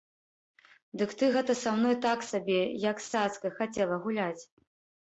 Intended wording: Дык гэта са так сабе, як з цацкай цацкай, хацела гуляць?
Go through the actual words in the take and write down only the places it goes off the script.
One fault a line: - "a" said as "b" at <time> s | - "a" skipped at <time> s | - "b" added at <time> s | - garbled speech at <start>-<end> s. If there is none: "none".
- "ты" added at 1.2 s
- "мной" added at 1.8 s
- "цацкай" skipped at 3.6 s